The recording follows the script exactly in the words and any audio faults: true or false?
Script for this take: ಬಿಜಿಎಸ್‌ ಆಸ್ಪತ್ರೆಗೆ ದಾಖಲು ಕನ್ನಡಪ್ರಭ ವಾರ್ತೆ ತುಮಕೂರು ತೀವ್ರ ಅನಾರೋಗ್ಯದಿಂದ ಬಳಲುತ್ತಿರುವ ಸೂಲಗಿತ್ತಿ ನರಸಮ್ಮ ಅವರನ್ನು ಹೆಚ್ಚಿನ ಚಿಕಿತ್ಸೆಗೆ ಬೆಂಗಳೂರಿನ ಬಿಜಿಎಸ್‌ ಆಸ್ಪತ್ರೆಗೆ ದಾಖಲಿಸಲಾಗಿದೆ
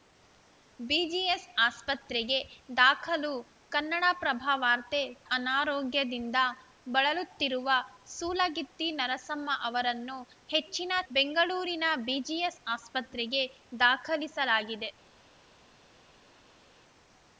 false